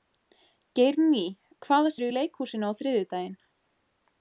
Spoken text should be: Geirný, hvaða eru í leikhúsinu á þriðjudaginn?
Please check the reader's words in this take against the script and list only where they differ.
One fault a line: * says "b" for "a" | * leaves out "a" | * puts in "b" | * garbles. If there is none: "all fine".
all fine